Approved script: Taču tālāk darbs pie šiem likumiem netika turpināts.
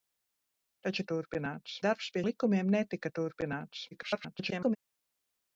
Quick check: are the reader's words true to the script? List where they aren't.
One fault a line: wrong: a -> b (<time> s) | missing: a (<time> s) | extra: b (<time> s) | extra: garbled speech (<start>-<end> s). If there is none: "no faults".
wrong: tālāk -> turpināts (1.1 s)
missing: šiem (2.2 s)
extra: garbled speech (3.9-4.8 s)